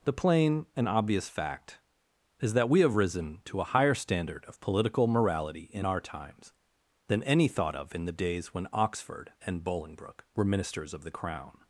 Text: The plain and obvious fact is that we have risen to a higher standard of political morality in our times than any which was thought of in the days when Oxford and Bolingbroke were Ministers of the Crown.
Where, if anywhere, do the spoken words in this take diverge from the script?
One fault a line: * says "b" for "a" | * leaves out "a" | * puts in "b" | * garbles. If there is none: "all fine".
* leaves out "which was"